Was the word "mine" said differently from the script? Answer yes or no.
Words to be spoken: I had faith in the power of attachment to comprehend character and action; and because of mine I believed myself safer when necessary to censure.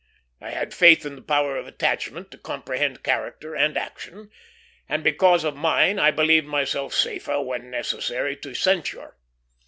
no